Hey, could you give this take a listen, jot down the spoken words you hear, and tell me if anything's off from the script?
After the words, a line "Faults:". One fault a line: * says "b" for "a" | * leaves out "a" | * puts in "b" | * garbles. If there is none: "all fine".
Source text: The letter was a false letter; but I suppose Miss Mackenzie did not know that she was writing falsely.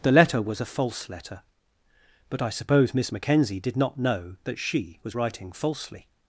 The letter was a false letter; but I suppose Miss Mackenzie did not know that she was writing falsely.
Faults:
all fine